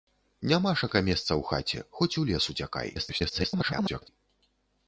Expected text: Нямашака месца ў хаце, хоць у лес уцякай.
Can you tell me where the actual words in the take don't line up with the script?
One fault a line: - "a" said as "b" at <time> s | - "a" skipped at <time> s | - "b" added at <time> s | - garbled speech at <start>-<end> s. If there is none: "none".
- garbled speech at 2.9-4.1 s